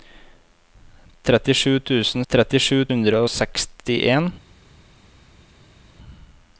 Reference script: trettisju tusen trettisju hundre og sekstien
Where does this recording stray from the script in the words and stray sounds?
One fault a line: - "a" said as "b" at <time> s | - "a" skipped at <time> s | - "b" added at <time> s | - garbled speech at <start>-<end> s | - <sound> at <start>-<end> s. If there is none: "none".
none